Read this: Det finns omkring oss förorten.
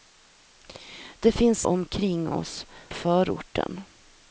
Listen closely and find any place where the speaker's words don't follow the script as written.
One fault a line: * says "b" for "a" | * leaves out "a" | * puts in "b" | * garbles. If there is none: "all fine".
all fine